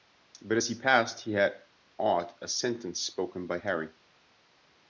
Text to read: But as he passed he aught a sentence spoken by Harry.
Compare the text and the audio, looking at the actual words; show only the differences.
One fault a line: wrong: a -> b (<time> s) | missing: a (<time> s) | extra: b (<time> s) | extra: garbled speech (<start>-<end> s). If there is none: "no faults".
extra: had (1.3 s)